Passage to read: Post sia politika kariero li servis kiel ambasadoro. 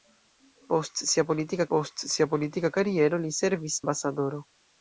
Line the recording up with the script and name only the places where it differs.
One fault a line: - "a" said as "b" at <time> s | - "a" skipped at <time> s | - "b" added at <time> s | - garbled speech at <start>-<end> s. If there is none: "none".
- "post sia politika" added at 1.7 s
- "kiel" skipped at 3.8 s